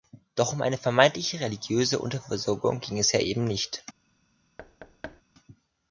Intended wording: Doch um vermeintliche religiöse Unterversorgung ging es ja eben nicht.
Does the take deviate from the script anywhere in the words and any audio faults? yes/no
yes